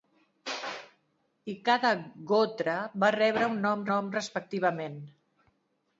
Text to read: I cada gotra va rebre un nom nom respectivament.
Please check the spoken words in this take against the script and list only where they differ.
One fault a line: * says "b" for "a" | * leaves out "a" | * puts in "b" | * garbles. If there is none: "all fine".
all fine